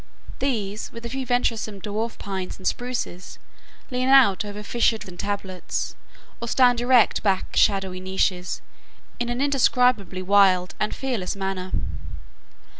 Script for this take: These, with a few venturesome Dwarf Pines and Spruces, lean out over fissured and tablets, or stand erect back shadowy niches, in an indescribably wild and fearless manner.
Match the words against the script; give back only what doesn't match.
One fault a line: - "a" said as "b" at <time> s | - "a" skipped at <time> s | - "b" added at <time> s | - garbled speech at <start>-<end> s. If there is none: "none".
none